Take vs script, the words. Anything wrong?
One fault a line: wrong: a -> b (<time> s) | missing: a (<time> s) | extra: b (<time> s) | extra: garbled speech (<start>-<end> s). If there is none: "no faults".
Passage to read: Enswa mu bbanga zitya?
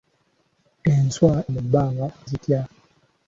no faults